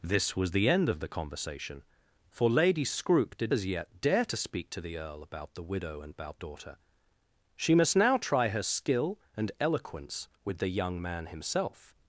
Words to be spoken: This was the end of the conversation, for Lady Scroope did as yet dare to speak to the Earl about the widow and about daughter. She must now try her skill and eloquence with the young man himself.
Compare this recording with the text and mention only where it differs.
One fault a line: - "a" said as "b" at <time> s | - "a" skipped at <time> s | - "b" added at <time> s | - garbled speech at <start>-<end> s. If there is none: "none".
none